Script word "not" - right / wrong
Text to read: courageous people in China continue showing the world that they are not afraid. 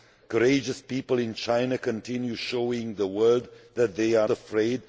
wrong